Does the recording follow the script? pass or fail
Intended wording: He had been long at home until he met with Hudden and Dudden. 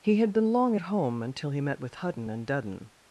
pass